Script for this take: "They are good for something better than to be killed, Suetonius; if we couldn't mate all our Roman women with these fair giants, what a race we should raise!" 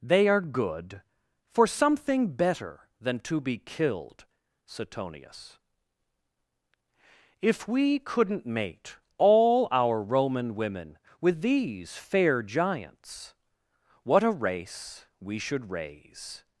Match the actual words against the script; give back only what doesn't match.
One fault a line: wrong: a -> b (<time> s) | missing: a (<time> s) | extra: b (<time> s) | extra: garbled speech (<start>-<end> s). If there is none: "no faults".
no faults